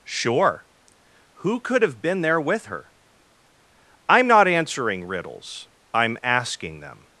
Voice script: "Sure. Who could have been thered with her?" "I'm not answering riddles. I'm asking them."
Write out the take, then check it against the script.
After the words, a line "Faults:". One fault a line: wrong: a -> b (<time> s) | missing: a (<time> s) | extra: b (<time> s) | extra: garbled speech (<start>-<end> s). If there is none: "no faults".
"Sure. Who could have been there with her?" "I'm not answering riddles. I'm asking them."
Faults:
wrong: thered -> there (2.2 s)